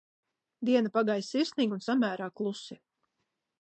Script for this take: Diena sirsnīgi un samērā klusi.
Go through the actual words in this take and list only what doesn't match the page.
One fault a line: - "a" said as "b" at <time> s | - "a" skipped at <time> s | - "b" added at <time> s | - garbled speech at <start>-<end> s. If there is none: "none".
- "pagāja" added at 0.9 s